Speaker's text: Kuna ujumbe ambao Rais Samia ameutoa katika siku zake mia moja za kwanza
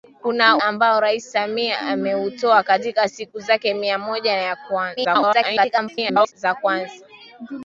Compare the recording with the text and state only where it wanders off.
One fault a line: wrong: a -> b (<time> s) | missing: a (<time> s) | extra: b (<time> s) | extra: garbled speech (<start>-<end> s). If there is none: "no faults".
missing: ujumbe (0.6 s)
extra: garbled speech (5.0-6.3 s)